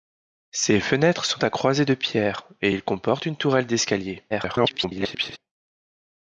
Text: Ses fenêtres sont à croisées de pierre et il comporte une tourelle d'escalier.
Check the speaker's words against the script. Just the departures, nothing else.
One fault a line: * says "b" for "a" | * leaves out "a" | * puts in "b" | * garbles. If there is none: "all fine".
* garbles